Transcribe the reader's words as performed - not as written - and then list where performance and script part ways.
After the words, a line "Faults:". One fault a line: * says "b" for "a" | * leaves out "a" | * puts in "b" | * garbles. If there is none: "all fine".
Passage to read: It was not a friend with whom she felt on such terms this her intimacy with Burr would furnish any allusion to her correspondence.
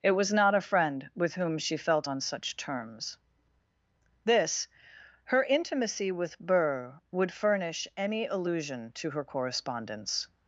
It was not a friend with whom she felt on such terms this her intimacy with Burr would furnish any allusion to her correspondence.
Faults:
all fine